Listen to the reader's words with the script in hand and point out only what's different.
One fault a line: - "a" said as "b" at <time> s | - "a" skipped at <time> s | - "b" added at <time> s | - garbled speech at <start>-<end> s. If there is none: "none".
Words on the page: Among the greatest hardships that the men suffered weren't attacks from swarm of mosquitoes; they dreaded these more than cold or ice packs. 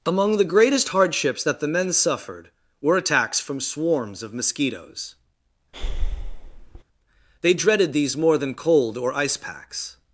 - "weren't" said as "were" at 2.8 s
- "swarm" said as "swarms" at 3.6 s